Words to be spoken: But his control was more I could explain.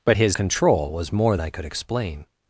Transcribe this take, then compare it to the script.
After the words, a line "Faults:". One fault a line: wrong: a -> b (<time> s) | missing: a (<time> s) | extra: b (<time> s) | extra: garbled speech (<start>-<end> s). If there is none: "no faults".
But his control was more I could explain.
Faults:
no faults